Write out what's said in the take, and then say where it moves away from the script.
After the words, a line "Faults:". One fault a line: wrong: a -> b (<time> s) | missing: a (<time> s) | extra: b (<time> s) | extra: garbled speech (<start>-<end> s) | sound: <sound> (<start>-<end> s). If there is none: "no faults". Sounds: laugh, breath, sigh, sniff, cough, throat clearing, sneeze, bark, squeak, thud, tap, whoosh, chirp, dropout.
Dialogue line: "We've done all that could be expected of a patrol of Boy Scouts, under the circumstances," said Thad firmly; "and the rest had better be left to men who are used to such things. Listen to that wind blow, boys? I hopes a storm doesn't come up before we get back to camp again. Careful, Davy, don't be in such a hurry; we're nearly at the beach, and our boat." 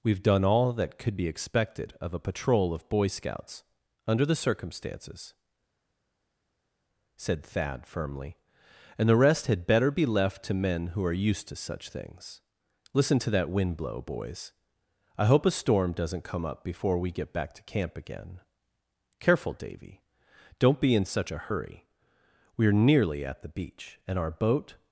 "We've done all that could be expected of a patrol of Boy Scouts, under the circumstances," said Thad firmly; "and the rest had better be left to men who are used to such things. Listen to that wind blow, boys? I hope a storm doesn't come up before we get back to camp again. Careful, Davy, don't be in such a hurry; we're nearly at the beach, and our boat."
Faults:
wrong: hopes -> hope (15.3 s)